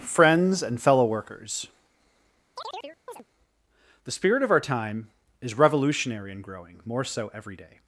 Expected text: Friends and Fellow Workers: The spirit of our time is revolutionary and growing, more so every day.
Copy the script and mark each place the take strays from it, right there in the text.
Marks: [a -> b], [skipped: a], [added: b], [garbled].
Friends and Fellow Workers: The spirit of our time is revolutionary and growing, more so every day.